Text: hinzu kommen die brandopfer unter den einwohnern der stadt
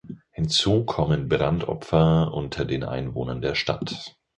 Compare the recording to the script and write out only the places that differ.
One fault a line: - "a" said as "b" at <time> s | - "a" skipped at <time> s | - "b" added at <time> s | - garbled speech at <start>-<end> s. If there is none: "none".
- "die" skipped at 1.3 s